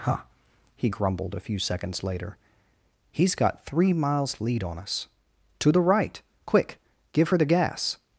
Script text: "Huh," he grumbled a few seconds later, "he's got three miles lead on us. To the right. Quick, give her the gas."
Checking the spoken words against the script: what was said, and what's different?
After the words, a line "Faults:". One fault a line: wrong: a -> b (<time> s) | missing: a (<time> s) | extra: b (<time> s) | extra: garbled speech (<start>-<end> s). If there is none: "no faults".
"Huh," he grumbled a few seconds later, "he's got three miles lead on us. To the right. Quick, give her the gas."
Faults:
no faults